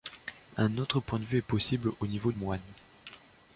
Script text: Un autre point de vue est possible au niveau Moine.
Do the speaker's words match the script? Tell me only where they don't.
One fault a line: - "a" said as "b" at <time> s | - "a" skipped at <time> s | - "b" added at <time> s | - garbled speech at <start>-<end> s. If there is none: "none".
none